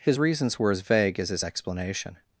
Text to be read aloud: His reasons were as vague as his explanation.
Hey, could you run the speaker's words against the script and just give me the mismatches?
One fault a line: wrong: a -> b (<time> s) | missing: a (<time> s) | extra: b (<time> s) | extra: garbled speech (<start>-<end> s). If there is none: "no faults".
no faults